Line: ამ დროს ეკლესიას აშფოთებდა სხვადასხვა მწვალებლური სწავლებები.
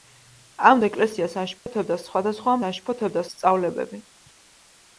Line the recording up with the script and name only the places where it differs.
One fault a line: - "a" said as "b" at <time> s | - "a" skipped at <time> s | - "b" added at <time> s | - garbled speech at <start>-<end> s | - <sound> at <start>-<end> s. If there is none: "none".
- "დროს" skipped at 0.8 s
- dropout at 1.6-1.7 s
- "მწვალებლური" said as "აშფოთებდა" at 2.7 s